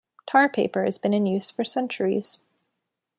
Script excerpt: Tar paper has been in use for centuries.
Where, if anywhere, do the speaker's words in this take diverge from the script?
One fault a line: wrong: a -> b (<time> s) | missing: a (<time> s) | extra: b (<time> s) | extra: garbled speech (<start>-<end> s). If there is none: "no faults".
no faults